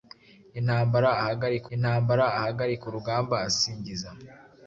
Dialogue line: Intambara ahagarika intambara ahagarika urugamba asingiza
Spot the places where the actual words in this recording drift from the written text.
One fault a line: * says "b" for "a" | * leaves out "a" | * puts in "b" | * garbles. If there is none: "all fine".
all fine